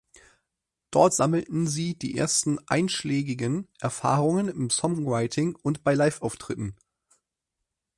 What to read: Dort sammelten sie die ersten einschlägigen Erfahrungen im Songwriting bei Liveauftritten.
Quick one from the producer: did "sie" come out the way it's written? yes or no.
yes